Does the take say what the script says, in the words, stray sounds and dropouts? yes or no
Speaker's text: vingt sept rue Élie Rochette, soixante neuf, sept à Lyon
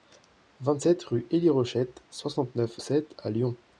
yes